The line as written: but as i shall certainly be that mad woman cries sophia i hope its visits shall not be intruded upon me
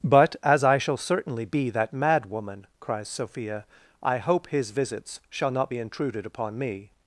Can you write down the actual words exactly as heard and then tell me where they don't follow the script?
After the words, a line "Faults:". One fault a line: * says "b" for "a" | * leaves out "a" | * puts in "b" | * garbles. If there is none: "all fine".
but as i shall certainly be that mad woman cries sophia i hope his visits shall not be intruded upon me
Faults:
* says "his" for "its"